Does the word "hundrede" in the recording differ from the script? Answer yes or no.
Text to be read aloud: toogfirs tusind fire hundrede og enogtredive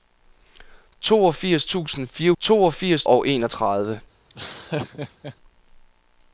yes